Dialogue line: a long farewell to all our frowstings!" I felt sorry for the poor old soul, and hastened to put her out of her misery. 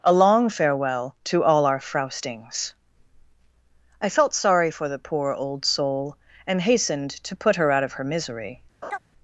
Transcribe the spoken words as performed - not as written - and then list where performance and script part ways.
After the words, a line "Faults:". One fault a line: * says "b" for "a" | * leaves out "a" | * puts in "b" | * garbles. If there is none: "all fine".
a long farewell to all our frowstings!" I felt sorry for the poor old soul, and hastened to put her out of her misery.
Faults:
all fine